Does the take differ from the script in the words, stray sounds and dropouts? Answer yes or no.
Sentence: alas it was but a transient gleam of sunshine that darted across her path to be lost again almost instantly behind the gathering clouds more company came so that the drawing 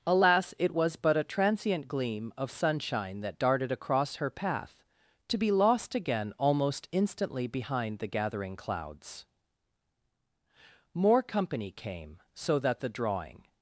no